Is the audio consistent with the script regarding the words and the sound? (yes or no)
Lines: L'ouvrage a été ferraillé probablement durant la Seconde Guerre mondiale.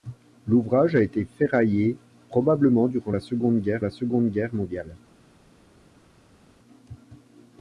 no